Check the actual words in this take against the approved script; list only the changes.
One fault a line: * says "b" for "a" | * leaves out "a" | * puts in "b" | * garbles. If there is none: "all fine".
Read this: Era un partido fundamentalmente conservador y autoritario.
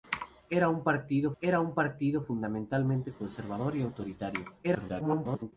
* puts in "era un partido"
* garbles